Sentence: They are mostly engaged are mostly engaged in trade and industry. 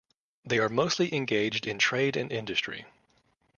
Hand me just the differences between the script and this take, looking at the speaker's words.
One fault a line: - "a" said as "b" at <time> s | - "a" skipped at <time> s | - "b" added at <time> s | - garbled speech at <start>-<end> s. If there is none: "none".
- "are mostly engaged" skipped at 1.7 s